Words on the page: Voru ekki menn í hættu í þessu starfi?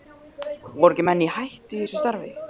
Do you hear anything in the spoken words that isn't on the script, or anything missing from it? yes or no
no